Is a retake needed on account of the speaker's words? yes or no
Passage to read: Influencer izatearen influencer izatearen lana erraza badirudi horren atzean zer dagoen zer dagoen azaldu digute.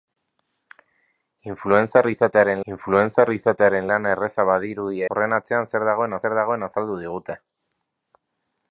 no